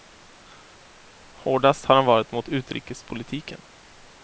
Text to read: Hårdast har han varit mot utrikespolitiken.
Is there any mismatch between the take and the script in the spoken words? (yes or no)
no